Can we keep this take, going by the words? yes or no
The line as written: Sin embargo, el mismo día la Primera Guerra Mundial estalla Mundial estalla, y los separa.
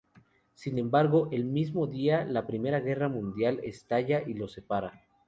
no